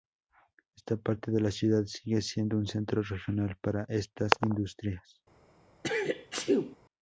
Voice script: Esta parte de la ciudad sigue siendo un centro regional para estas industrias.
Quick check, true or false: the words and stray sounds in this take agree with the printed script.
false